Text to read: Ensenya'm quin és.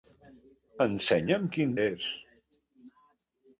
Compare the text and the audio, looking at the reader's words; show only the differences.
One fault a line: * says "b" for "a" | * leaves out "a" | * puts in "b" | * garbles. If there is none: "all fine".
all fine